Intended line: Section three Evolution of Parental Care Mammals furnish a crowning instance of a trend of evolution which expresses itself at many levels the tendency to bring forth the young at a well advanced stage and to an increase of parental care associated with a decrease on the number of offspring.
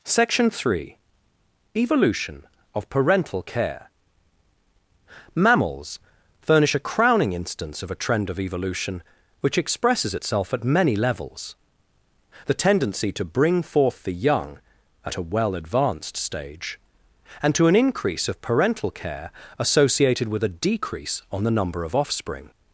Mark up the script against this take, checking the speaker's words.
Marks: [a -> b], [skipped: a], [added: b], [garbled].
Section three Evolution of Parental Care Mammals furnish a crowning instance of a trend of evolution which expresses itself at many levels the tendency to bring forth the young at a well advanced stage and to an increase of parental care associated with a decrease on the number of offspring.